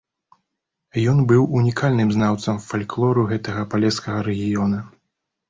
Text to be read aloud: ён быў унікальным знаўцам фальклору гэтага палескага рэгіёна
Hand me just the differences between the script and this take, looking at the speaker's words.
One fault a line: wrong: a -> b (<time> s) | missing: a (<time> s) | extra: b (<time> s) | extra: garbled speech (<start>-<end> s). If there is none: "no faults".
no faults